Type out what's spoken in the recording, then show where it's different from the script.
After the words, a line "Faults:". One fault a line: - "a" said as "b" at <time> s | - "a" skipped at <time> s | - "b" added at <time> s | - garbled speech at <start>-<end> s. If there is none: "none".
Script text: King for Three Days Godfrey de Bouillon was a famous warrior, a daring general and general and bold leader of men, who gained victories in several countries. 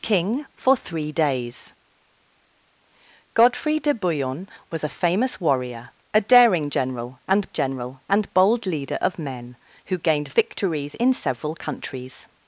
King for Three Days Godfrey de Bouillon was a famous warrior, a daring general and general and bold leader of men, who gained victories in several countries.
Faults:
none